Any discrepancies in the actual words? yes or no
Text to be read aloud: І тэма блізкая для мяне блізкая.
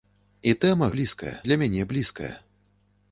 no